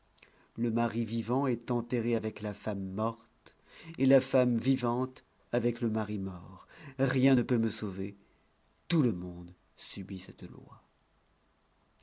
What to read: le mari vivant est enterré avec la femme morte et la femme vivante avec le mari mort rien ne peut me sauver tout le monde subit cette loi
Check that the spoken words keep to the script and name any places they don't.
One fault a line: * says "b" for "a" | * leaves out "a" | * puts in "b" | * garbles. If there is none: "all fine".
all fine